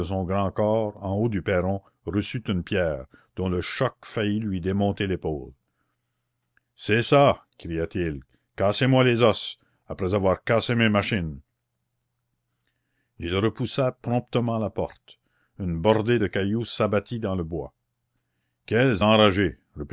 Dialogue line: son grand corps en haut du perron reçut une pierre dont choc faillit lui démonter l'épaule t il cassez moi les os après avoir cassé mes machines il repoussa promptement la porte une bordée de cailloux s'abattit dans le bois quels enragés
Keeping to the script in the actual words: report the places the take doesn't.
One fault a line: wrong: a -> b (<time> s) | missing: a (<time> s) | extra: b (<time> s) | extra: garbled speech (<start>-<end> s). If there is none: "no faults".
extra: le (3.5 s)
extra: c'est ça cria (6.7 s)